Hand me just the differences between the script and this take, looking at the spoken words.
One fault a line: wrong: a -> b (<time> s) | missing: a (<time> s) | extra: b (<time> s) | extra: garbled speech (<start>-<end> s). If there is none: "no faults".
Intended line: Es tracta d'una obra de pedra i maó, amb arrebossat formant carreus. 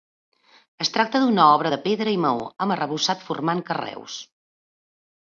no faults